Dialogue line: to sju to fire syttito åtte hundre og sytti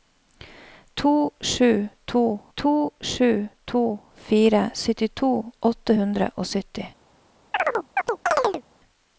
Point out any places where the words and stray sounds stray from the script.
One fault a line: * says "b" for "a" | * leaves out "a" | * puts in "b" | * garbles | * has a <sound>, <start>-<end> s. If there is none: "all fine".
* puts in "to sju to"
* has a chirp, 7.5-8.6 s